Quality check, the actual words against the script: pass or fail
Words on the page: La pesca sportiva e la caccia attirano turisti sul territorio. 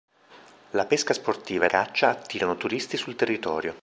fail